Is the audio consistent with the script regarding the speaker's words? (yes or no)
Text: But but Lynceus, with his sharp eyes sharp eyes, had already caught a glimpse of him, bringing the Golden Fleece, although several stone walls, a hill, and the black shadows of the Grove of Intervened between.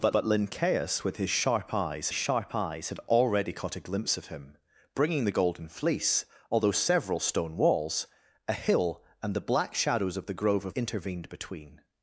yes